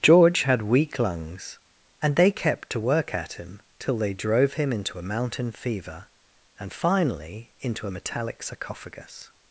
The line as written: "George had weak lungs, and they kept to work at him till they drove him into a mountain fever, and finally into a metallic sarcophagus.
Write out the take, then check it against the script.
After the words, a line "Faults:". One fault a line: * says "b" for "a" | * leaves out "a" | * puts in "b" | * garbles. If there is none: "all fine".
"George had weak lungs, and they kept to work at him till they drove him into a mountain fever, and finally into a metallic sarcophagus.
Faults:
all fine